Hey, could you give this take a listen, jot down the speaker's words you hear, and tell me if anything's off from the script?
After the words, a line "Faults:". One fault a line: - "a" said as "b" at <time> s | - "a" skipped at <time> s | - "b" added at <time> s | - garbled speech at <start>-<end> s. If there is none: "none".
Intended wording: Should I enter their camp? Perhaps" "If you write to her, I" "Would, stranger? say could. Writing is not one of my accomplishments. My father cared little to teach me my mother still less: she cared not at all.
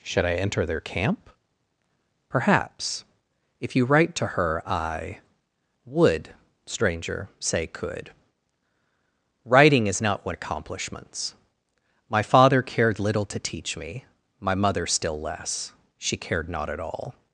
Should I enter their camp? Perhaps" "If you write to her, I" "Would, stranger? say could. Writing is not one accomplishments. My father cared little to teach me my mother still less: she cared not at all.
Faults:
- "of my" skipped at 10.4 s